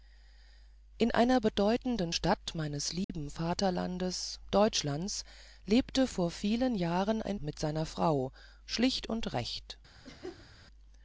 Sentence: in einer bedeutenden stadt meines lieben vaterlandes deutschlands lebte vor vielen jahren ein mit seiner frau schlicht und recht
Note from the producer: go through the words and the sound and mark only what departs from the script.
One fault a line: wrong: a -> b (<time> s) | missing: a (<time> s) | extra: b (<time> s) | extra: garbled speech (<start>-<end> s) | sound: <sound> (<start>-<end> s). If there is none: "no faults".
sound: dropout (3.0-3.1 s)
sound: laugh (10.0-10.5 s)